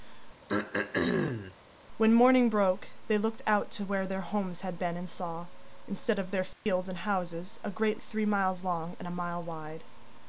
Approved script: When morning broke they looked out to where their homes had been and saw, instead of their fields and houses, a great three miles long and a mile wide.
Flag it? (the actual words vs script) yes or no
no